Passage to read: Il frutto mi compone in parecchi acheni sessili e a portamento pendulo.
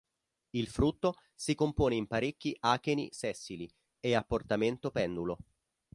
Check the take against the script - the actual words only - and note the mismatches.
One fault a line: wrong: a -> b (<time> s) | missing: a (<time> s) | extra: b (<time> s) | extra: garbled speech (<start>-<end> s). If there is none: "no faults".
wrong: mi -> si (1.3 s)